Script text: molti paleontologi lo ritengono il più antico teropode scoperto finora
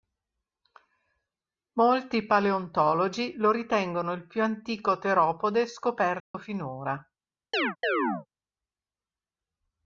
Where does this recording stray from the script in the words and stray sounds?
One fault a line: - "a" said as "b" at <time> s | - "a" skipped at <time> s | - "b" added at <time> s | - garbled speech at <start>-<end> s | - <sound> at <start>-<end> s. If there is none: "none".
- dropout at 6.2-6.3 s
- chirp at 7.5-8.3 s